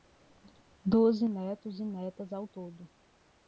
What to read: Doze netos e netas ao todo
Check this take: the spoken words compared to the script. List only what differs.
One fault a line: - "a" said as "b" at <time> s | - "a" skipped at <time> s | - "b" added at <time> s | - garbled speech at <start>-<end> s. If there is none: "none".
none